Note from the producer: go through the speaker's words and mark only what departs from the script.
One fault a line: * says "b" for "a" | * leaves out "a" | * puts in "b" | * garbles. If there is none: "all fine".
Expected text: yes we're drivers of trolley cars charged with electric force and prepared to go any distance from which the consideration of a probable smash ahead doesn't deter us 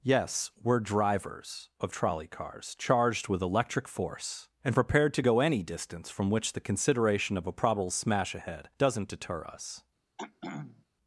all fine